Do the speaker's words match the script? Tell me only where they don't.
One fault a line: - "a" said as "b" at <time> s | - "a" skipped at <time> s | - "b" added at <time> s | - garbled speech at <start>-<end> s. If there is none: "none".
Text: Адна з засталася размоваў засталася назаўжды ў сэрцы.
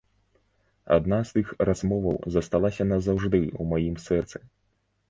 - "засталася" said as "тых" at 1.4 s
- "маім" added at 3.8 s